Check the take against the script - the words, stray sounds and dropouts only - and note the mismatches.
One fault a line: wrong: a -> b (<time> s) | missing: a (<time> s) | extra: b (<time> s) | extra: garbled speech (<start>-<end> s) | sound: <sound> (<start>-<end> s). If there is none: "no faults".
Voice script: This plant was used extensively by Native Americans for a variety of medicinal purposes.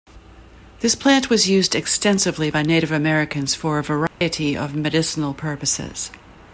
sound: dropout (4.1-4.2 s)